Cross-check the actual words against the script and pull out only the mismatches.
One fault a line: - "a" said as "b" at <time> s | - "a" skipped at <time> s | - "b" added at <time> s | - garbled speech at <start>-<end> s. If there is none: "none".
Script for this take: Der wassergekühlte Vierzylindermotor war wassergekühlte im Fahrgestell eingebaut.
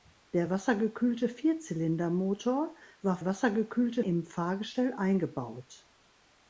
none